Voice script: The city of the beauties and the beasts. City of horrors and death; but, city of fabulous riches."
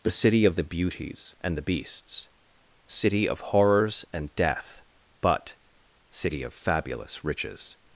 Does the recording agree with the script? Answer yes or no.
yes